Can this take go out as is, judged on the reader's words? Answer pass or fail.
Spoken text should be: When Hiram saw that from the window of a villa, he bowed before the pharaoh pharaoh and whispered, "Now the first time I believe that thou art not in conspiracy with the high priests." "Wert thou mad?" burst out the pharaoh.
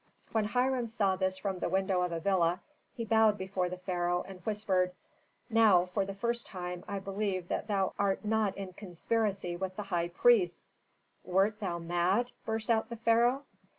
fail